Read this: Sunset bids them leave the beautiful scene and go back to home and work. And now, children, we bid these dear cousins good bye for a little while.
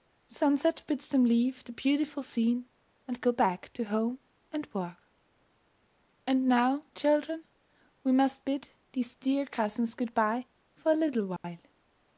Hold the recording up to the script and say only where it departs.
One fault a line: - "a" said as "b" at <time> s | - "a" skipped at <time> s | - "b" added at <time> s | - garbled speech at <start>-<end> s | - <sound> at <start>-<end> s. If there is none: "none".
- "must" added at 8.1 s
- dropout at 11.4-11.4 s